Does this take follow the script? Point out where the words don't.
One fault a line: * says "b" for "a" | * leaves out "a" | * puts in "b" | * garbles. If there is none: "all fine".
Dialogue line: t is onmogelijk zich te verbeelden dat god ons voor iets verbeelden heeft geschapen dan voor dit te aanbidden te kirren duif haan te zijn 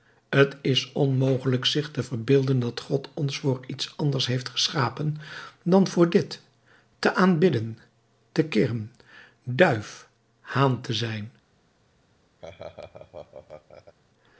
* says "anders" for "verbeelden"